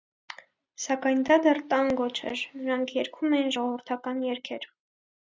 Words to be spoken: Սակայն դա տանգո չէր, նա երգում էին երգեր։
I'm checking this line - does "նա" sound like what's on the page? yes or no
no